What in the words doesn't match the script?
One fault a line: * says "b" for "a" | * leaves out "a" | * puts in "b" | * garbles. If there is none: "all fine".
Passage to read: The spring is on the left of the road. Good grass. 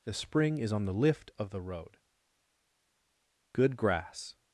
* says "lift" for "left"